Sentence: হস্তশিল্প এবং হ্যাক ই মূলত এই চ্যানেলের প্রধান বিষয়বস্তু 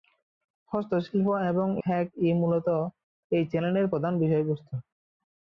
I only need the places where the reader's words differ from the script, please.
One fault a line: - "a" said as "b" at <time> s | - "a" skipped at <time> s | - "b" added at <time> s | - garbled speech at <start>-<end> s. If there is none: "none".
none